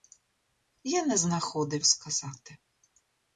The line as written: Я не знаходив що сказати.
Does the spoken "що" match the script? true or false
false